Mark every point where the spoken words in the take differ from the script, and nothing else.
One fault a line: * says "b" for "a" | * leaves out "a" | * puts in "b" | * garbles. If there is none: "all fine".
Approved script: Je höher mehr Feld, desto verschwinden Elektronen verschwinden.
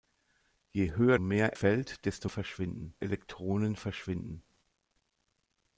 all fine